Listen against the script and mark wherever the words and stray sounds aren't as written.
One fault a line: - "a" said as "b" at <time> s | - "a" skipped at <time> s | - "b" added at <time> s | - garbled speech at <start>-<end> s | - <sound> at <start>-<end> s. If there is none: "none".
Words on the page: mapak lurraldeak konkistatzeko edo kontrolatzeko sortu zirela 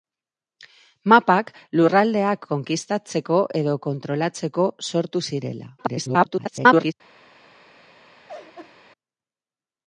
- garbled speech at 5.8-6.9 s
- laugh at 8.3-8.7 s